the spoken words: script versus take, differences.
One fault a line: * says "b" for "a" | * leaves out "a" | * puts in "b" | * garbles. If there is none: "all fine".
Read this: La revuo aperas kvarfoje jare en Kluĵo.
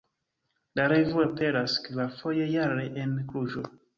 all fine